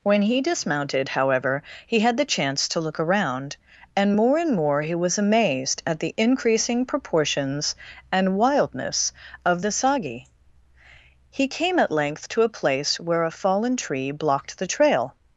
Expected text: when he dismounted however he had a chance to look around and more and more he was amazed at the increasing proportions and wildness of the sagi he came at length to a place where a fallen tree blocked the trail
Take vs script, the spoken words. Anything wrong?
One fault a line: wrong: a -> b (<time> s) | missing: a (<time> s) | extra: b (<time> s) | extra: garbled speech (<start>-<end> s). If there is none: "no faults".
wrong: a -> the (2.2 s)